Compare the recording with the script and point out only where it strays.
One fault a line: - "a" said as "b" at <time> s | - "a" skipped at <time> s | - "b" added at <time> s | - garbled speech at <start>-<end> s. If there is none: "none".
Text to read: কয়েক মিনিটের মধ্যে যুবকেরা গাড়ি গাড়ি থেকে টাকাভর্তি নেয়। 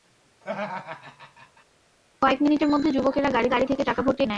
none